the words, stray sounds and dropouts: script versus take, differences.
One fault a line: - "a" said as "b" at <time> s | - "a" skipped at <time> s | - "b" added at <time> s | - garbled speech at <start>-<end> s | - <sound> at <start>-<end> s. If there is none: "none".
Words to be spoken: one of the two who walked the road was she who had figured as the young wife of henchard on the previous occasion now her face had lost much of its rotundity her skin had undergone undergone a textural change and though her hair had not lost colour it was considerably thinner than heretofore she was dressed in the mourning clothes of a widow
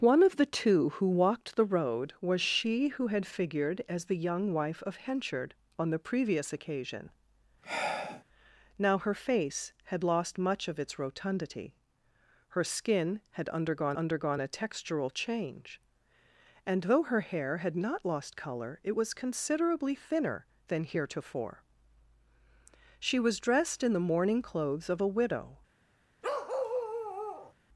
- sigh at 7.6-8.2 s
- bark at 26.2-27.5 s